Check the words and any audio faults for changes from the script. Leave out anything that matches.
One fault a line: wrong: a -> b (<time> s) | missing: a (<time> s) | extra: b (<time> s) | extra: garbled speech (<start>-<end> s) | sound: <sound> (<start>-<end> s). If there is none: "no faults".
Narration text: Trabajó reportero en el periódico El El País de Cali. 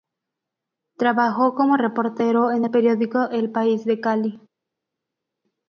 extra: como (1.5 s)
missing: El (3.5 s)